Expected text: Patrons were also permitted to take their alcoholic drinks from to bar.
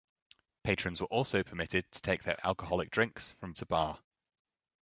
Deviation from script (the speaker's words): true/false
false